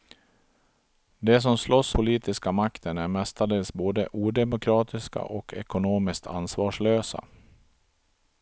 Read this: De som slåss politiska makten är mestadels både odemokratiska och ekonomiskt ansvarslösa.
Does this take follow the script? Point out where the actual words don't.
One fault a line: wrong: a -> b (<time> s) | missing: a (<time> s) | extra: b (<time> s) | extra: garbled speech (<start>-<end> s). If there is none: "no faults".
no faults